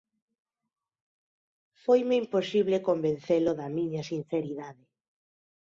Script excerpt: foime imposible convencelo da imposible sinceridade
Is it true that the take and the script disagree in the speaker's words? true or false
true